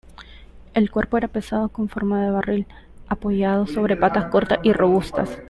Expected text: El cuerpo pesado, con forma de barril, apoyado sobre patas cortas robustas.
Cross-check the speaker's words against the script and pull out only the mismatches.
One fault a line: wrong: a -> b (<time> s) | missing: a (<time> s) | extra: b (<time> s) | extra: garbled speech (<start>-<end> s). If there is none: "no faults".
extra: era (1.2 s)
extra: y (4.6 s)